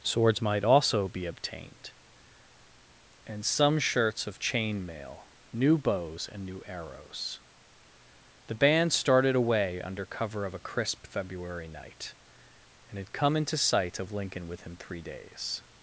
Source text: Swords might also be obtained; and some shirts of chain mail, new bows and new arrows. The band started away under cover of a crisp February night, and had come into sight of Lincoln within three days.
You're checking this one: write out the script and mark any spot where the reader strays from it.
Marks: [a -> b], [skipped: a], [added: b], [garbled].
Swords might also be obtained; and some shirts of chain mail, new bows and new arrows. The band started away under cover of a crisp February night, and had come into sight of Lincoln within three days.